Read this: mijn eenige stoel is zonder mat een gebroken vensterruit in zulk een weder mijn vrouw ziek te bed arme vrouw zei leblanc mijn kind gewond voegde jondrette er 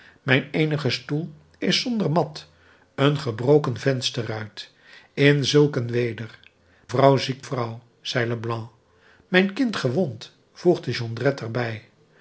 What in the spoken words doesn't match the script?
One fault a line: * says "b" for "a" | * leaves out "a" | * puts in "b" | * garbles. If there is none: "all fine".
* leaves out "mijn"
* leaves out "te bed arme"